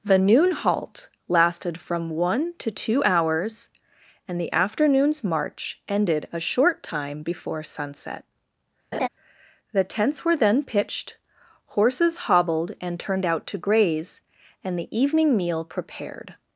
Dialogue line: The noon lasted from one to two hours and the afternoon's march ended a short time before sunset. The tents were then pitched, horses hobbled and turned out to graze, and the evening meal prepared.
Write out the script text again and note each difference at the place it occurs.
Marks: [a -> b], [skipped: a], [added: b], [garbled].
The noon [added: halt] lasted from one to two hours and the afternoon's march ended a short time before sunset. The tents were then pitched, horses hobbled and turned out to graze, and the evening meal prepared.